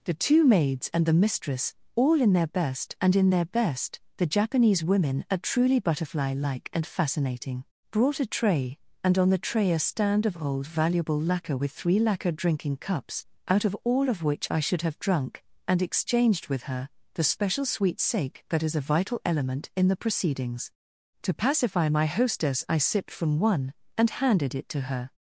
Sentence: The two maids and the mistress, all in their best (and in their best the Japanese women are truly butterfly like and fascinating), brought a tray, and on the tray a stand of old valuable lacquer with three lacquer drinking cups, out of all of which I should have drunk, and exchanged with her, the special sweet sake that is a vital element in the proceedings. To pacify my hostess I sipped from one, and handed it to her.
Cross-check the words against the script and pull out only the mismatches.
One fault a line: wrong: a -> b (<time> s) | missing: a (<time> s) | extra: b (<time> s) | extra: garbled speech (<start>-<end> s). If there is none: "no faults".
no faults